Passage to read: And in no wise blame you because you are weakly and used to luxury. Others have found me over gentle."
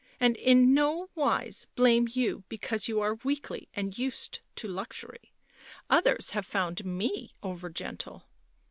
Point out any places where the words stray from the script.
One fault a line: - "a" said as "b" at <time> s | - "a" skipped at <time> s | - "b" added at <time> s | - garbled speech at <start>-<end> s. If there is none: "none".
none